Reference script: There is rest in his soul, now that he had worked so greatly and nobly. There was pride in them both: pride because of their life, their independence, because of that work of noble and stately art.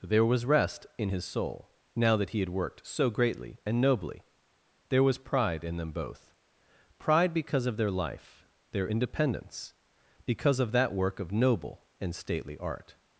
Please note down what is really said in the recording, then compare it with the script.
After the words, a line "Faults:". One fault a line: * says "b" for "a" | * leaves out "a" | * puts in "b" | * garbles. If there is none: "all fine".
There was rest in his soul, now that he had worked so greatly and nobly. There was pride in them both: pride because of their life, their independence, because of that work of noble and stately art.
Faults:
* says "was" for "is"